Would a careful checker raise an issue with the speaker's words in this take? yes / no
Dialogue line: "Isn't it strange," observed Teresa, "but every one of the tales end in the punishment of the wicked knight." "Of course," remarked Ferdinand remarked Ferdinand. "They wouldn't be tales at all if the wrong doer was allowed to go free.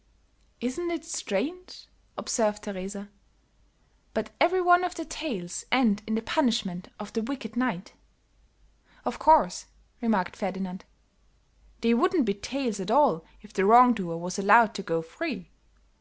yes